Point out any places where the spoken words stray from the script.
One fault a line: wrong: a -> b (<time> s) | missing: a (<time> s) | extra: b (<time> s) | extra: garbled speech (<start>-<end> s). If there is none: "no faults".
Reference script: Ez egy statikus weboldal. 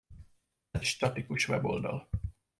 missing: egy (0.8 s)